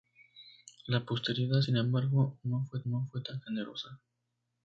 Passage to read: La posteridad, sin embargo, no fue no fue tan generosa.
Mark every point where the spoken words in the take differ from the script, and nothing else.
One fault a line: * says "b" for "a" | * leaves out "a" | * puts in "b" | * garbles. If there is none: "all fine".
all fine